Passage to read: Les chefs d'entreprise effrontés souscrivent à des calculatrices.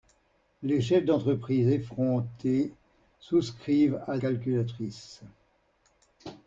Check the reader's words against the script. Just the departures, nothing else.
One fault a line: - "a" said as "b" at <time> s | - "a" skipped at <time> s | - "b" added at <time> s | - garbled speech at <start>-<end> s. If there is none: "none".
- "des" skipped at 4.2 s